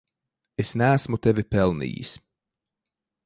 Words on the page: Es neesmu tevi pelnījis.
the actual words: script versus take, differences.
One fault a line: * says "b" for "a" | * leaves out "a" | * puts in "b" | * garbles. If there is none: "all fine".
all fine